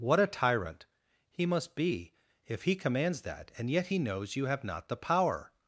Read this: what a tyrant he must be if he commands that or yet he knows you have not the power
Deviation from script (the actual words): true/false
true